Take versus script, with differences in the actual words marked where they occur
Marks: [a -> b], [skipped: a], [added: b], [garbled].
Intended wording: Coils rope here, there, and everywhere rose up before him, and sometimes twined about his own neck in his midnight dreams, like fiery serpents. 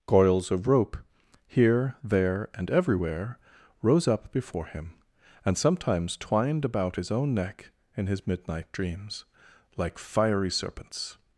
Coils [added: of] rope here, there, and everywhere rose up before him, and sometimes twined about his own neck in his midnight dreams, like fiery serpents.